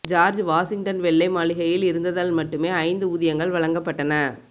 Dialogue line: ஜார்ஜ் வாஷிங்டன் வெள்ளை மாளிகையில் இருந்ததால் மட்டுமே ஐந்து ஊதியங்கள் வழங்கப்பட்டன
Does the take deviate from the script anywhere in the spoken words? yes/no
no